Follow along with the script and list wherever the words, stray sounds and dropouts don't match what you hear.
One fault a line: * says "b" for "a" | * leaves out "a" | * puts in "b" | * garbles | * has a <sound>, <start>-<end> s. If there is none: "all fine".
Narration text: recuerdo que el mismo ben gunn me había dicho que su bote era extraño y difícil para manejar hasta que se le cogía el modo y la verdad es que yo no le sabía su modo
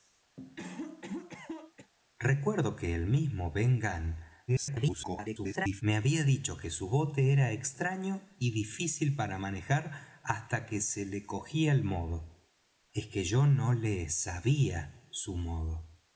* has a cough, 0.4-1.9 s
* garbles
* leaves out "y la verdad"